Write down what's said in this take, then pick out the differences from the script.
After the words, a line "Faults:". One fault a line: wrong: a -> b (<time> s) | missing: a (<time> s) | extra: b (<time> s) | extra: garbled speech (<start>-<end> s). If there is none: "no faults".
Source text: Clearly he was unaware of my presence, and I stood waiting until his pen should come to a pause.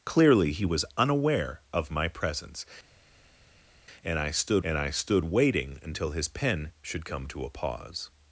Clearly he was unaware of my presence, and I stood and I stood waiting until his pen should come to a pause.
Faults:
extra: and I stood (4.6 s)